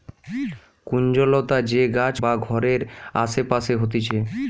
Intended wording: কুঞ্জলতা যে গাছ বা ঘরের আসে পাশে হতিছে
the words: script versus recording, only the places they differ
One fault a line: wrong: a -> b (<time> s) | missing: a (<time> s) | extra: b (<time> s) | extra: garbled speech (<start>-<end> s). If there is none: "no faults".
no faults